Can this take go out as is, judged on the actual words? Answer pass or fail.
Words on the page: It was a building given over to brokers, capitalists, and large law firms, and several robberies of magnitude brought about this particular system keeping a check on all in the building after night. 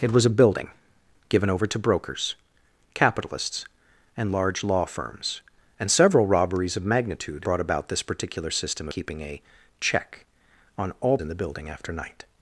pass